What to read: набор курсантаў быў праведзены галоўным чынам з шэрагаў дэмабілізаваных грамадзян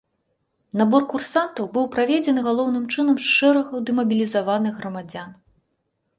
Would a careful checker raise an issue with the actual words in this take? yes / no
no